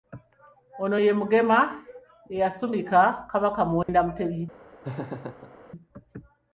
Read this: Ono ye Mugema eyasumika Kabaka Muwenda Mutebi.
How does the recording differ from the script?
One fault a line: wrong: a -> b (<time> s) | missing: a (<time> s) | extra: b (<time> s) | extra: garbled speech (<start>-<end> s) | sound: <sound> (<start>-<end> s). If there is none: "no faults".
sound: dropout (3.8-3.9 s)
sound: laugh (4.8-5.6 s)